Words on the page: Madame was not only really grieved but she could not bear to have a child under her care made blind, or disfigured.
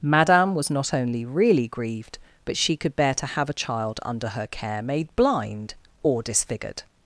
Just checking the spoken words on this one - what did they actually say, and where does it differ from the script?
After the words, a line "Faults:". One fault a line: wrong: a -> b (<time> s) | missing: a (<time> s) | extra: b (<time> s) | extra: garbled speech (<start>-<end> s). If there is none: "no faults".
Madame was not only really grieved but she could bear to have a child under her care made blind, or disfigured.
Faults:
missing: not (3.0 s)